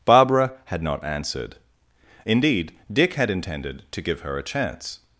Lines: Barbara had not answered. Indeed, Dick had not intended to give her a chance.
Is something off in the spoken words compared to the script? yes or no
yes